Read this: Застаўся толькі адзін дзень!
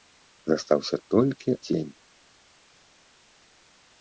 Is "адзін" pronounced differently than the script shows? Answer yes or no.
yes